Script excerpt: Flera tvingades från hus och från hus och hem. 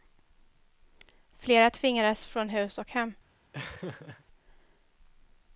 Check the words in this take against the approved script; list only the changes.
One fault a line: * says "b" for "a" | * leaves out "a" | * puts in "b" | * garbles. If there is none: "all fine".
* leaves out "från hus och"